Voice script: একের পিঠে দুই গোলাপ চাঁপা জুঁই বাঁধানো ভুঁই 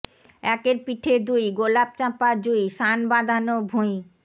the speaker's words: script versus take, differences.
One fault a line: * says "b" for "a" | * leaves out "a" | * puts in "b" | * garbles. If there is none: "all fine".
* puts in "সান্"